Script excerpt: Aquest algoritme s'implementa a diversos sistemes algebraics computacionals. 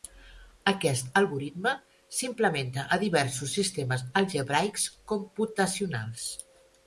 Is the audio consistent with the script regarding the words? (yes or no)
yes